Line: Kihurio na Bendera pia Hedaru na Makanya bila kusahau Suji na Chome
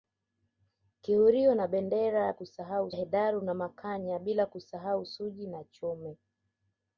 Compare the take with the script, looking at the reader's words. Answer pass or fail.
fail